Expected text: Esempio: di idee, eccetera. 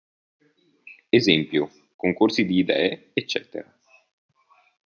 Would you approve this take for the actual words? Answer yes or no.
no